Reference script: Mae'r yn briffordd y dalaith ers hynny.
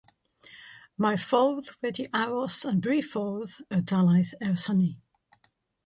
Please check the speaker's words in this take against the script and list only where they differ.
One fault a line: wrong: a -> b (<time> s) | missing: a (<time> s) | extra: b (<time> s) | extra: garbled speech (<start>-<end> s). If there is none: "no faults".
extra: ffordd wedi aros (1.2 s)